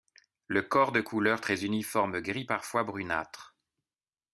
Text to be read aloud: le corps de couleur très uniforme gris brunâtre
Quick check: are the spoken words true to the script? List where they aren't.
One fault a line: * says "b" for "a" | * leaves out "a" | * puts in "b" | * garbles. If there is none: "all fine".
* puts in "parfois"